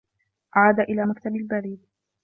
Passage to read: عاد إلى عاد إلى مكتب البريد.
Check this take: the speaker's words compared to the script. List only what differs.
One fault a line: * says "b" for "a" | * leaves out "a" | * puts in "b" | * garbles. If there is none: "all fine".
* leaves out "عاد إلى"